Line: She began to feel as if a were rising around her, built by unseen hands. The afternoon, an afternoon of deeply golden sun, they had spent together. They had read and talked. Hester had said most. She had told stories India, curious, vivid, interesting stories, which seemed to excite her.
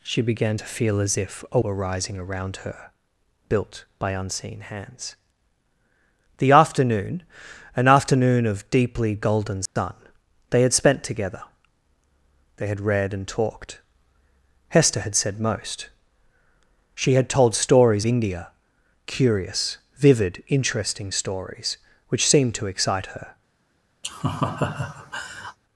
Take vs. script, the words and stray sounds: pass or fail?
fail